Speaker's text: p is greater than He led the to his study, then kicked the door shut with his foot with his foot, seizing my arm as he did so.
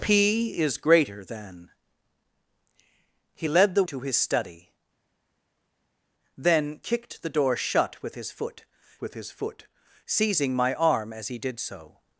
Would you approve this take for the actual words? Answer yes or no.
yes